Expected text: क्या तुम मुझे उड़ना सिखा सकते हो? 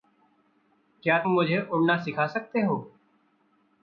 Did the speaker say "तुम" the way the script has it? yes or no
no